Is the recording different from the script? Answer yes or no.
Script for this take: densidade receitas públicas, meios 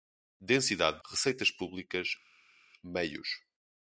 no